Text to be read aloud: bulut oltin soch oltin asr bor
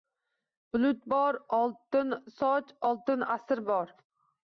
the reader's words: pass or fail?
fail